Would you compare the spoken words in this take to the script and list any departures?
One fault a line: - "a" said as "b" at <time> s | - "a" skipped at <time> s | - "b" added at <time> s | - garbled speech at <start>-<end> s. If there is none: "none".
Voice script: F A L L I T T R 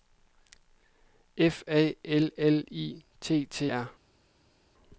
none